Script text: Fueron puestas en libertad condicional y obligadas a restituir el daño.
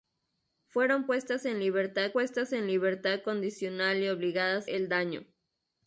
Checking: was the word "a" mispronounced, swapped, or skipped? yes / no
yes